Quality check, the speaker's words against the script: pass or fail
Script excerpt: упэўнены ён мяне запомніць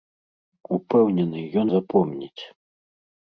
fail